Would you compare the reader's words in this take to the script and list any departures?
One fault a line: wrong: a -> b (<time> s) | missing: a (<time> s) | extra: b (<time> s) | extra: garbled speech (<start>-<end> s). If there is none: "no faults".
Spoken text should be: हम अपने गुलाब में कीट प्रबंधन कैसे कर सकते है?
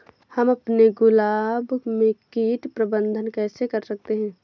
no faults